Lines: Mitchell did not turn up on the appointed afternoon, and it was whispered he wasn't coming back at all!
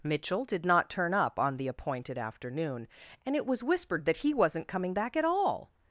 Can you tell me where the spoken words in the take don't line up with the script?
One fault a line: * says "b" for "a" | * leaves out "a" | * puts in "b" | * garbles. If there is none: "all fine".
* puts in "that"